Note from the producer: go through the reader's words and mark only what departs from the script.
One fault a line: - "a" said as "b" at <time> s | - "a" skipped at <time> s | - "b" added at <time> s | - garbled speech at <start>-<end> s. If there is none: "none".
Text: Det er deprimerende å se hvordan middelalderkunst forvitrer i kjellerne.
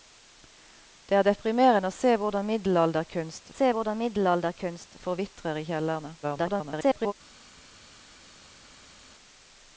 - "se hvordan middelalderkunst" added at 3.5 s
- garbled speech at 6.2-7.1 s